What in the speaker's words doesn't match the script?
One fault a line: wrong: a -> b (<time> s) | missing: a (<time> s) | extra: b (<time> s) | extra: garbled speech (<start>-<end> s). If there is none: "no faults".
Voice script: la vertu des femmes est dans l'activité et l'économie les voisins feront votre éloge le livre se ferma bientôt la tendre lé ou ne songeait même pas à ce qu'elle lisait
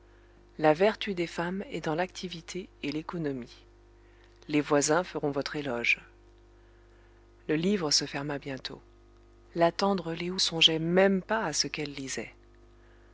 missing: ne (10.4 s)